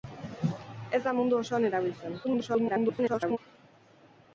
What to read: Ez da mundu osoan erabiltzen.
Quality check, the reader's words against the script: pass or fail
fail